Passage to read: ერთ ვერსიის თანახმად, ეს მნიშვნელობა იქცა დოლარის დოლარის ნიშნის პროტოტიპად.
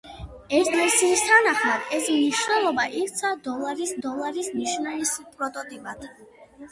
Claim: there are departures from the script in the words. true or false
false